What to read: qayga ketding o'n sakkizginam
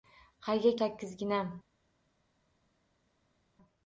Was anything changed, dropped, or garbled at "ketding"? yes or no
yes